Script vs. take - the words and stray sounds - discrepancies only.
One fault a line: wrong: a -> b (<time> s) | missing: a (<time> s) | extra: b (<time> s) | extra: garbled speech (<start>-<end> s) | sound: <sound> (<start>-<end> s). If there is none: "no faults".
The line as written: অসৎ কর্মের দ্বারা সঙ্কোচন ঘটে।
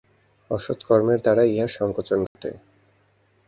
extra: ইহার (1.4 s)
sound: dropout (2.3-2.4 s)